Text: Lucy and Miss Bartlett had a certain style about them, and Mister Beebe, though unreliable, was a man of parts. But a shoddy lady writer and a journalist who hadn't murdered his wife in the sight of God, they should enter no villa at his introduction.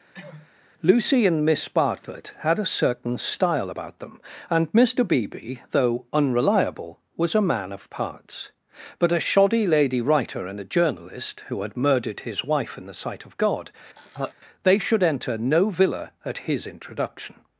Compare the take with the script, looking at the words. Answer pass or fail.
fail